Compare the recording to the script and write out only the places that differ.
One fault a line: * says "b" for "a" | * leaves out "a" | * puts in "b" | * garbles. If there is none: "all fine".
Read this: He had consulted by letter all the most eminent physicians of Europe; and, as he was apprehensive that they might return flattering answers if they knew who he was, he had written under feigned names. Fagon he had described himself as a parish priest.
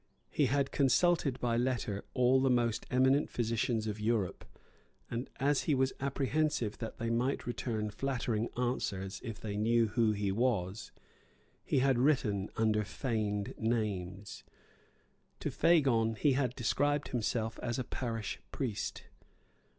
* puts in "To"